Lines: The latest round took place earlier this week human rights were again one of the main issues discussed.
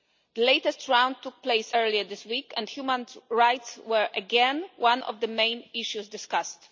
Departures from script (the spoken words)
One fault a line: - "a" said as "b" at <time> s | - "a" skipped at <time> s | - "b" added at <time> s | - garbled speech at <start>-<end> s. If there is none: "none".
- "and" added at 2.6 s